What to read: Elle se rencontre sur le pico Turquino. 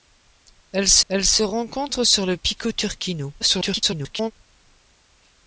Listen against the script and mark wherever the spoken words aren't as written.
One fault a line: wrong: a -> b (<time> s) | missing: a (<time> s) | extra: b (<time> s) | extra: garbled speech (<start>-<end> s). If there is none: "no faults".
extra: elle se (1.1 s)
extra: garbled speech (3.4-4.3 s)